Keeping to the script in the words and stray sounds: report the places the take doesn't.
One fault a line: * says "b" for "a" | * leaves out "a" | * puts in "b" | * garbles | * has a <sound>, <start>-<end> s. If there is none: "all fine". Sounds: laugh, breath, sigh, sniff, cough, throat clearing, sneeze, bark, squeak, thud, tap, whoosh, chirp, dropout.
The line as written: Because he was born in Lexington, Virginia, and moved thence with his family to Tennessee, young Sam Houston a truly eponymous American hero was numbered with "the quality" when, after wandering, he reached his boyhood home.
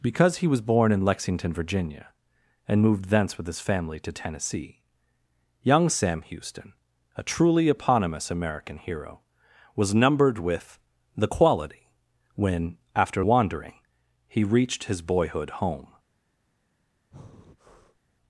* has a breath, 17.1-18.0 s